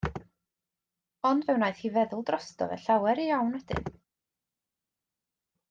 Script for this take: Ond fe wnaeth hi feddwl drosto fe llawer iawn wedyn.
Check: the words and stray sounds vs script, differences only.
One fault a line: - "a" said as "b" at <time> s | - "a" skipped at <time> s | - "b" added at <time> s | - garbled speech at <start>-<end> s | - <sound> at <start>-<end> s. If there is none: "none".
none